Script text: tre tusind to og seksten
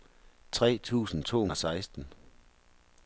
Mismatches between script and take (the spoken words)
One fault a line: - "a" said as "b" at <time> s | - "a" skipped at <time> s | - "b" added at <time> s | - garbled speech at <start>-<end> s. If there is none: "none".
none